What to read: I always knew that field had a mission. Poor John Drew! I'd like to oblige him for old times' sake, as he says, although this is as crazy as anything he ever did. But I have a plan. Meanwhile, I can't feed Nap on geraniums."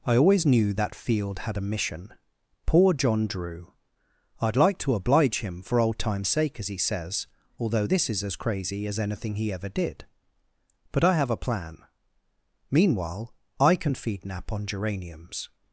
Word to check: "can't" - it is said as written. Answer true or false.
false